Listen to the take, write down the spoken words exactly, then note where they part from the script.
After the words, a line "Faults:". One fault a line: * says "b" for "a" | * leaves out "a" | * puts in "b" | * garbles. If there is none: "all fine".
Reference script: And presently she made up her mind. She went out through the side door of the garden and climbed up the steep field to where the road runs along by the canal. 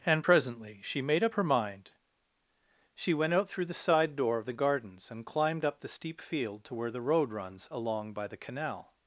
And presently she made up her mind. She went out through the side door of the gardens and climbed up the steep field to where the road runs along by the canal.
Faults:
* says "gardens" for "garden"